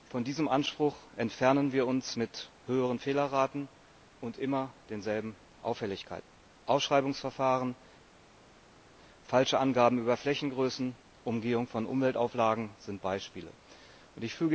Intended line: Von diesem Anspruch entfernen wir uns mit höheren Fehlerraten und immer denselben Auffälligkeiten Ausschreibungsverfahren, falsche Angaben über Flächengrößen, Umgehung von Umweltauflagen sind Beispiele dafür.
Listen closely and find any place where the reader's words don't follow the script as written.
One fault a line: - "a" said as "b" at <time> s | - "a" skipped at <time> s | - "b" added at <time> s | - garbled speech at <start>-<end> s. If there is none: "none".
none